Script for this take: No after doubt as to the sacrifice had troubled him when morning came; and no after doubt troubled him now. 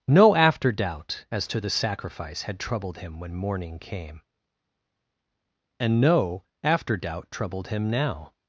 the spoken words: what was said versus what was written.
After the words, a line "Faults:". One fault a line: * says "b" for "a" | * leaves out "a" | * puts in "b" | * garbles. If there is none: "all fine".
No after doubt as to the sacrifice had troubled him when morning came; and no after doubt troubled him now.
Faults:
all fine